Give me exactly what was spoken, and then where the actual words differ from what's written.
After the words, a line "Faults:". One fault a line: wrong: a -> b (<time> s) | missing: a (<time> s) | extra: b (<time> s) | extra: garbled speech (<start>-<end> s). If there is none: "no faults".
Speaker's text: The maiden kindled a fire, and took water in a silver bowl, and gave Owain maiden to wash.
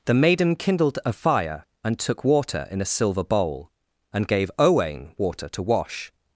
The maiden kindled a fire, and took water in a silver bowl, and gave Owain water to wash.
Faults:
wrong: maiden -> water (5.2 s)